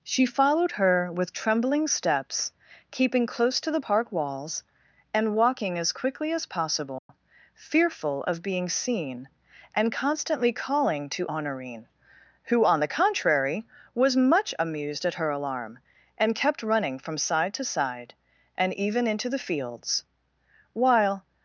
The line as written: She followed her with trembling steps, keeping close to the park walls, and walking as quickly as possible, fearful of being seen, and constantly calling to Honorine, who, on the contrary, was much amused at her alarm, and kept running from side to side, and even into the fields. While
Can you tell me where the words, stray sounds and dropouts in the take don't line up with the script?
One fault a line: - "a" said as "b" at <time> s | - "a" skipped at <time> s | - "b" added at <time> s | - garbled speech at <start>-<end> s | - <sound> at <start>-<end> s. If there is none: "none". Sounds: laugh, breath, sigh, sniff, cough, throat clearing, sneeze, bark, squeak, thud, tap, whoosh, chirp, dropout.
- dropout at 7.0-7.1 s